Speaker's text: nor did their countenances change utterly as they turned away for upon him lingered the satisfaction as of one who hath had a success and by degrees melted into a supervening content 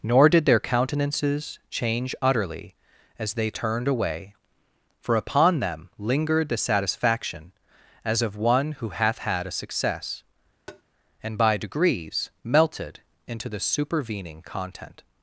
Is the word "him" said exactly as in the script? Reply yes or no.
no